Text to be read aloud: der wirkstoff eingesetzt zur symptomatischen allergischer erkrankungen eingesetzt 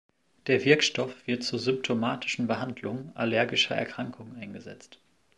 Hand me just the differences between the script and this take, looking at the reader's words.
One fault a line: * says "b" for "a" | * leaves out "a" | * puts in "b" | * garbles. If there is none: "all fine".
* says "wird" for "eingesetzt"
* puts in "behandlung"